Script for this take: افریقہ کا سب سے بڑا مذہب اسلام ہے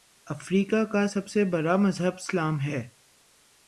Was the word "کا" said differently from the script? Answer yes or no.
no